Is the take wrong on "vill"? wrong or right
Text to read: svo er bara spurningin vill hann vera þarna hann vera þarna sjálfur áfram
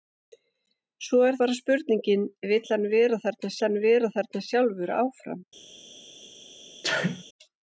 right